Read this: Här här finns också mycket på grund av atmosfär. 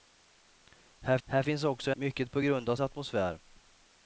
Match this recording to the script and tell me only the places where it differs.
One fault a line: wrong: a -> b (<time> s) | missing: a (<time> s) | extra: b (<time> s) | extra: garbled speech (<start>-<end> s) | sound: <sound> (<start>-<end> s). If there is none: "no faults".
no faults